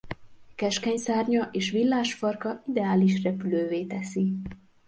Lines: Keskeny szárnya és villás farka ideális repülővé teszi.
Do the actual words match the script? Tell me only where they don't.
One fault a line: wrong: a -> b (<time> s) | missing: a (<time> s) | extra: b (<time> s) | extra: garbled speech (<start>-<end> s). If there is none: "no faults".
no faults